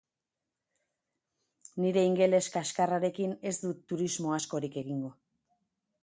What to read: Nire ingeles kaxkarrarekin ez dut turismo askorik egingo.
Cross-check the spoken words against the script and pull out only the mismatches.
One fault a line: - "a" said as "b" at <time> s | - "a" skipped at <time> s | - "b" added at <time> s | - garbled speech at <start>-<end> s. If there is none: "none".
none